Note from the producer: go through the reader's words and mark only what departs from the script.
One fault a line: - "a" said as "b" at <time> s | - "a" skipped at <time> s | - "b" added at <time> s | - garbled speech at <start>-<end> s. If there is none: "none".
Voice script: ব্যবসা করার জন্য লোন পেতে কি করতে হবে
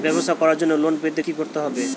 none